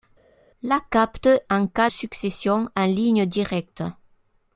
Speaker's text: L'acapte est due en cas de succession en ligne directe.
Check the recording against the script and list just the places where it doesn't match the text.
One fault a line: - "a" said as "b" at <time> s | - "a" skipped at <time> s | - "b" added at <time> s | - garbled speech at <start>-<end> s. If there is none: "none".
- "est due" skipped at 1.3 s
- "de" skipped at 1.9 s